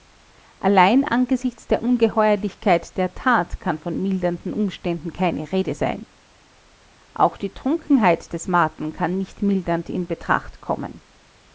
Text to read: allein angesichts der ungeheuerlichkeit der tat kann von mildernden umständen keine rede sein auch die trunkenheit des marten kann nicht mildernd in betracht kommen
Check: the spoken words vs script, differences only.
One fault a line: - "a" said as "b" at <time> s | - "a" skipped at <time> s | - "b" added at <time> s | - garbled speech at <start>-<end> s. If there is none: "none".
none